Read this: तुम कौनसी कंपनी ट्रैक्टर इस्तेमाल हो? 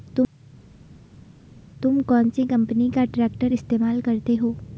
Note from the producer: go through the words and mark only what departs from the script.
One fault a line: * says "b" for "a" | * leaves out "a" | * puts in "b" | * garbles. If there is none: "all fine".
* puts in "का"
* puts in "करते"